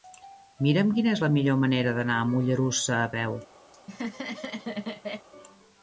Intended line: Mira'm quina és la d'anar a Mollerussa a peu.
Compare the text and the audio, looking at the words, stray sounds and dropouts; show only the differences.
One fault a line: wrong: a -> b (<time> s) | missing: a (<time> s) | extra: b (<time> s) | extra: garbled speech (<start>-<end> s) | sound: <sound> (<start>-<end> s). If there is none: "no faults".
extra: millor manera (1.3 s)
sound: laugh (3.7-5.3 s)